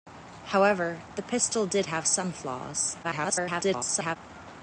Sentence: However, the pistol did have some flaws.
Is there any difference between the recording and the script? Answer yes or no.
yes